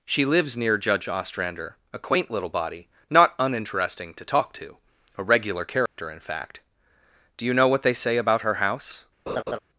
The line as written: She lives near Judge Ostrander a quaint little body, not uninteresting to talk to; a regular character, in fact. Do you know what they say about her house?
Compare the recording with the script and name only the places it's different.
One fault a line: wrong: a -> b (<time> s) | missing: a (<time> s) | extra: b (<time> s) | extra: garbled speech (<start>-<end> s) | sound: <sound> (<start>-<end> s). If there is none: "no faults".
sound: dropout (5.9-6.0 s)
sound: laugh (9.3-9.6 s)